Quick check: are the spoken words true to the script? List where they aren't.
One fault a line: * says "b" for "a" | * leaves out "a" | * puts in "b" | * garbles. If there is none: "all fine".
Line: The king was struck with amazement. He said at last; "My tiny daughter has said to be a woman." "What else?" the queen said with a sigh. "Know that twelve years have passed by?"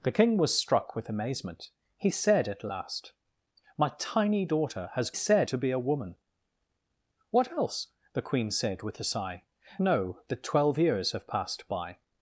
all fine